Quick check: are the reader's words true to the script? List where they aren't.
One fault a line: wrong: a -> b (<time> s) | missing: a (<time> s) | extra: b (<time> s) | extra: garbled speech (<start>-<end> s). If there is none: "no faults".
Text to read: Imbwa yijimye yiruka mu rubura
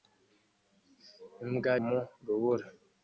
missing: yijimye yiruka (1.7 s)